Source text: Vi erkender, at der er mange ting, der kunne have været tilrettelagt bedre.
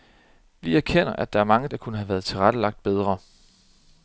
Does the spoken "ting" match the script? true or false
false